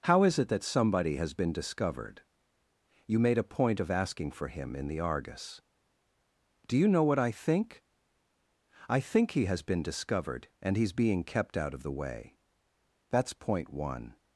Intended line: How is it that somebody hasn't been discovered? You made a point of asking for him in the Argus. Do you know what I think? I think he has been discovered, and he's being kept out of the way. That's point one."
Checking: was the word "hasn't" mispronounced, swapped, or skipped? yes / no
yes